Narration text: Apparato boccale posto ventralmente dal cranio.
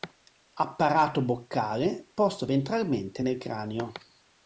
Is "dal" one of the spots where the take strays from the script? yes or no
yes